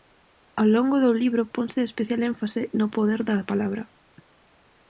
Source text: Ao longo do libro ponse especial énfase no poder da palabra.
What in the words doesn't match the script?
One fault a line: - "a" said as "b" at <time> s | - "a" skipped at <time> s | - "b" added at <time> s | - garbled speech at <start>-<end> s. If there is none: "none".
none